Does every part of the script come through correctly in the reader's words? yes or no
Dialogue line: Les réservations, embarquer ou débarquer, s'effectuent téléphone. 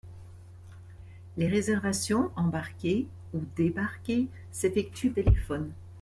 yes